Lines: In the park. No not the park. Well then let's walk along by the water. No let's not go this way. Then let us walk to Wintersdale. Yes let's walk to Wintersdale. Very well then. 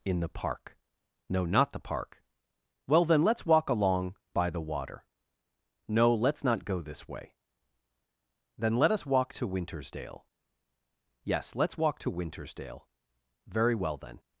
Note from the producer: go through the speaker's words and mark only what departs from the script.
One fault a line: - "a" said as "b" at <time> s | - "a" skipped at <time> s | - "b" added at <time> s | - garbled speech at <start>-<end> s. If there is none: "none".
none